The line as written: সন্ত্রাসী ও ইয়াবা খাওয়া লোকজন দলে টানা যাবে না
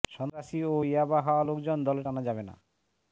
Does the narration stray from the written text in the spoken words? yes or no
no